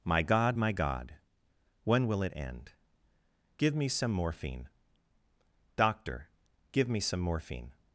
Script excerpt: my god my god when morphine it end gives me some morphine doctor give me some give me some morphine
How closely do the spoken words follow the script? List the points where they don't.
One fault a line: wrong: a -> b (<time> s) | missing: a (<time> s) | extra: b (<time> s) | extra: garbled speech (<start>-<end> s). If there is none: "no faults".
wrong: morphine -> will (2.1 s)
wrong: gives -> give (3.6 s)
missing: give me some (7.2 s)